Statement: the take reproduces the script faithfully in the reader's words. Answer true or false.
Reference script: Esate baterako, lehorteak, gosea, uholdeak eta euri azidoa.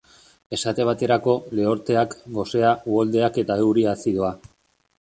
true